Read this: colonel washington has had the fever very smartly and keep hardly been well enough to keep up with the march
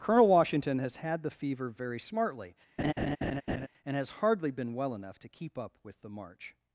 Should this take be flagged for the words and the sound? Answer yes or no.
yes